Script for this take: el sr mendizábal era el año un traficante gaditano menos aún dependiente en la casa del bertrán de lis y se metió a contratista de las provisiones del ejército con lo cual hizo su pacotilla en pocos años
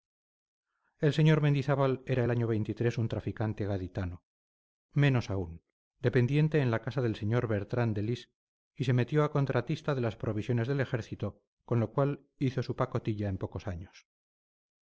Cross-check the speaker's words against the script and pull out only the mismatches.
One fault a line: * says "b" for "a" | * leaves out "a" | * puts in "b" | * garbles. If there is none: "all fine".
* puts in "sr"